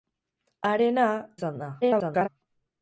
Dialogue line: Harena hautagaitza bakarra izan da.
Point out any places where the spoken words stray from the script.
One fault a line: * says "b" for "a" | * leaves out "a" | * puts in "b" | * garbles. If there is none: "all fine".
* leaves out "hautagaitza bakarra"
* garbles